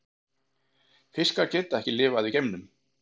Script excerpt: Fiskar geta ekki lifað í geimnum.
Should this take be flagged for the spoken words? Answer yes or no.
no